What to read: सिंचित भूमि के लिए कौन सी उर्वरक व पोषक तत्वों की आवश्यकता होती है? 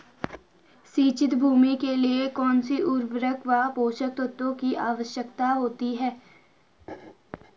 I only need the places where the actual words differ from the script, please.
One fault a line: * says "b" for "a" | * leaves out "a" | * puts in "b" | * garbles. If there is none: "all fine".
all fine